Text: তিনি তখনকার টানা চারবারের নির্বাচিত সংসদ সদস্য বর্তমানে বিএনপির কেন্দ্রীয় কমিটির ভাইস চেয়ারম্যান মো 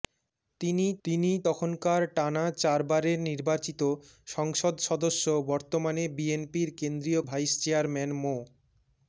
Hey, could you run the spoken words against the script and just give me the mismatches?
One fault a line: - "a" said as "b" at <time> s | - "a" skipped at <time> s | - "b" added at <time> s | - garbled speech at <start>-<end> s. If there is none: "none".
- "তিনি" added at 1.1 s
- "কমিটির" skipped at 7.2 s